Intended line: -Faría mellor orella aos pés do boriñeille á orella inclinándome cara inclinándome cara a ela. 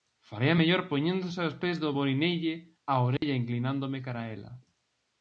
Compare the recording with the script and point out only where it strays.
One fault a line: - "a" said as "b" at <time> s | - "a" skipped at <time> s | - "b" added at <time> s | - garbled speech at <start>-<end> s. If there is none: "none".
- "orella" said as "poñéndose" at 0.9 s
- "inclinándome cara" skipped at 4.2 s